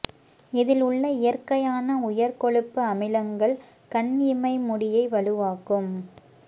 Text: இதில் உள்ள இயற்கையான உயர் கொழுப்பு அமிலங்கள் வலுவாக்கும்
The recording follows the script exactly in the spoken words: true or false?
false